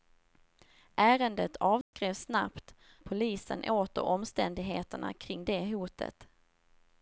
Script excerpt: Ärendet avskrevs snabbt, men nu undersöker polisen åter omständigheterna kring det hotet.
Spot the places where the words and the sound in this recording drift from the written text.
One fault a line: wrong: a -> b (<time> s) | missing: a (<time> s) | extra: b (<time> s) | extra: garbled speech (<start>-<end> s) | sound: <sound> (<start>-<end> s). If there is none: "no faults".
sound: dropout (1.8-1.9 s)
missing: men nu undersöker (2.8 s)